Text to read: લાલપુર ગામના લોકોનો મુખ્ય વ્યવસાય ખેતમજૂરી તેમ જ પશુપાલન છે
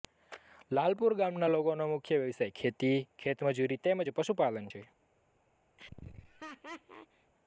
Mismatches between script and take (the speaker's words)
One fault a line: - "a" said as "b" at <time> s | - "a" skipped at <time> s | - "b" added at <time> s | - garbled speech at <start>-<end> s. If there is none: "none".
- "ખેતી" added at 2.6 s